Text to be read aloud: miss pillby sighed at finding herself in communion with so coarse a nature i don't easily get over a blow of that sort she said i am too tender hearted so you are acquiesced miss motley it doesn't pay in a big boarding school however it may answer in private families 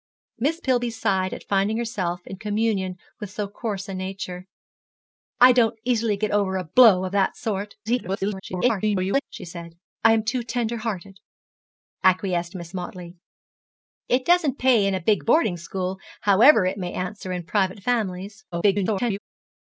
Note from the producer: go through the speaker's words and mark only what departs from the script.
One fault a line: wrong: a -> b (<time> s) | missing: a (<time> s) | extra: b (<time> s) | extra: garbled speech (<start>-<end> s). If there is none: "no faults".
extra: garbled speech (7.9-9.2 s)
missing: so you are (11.2 s)
extra: garbled speech (18.5-19.2 s)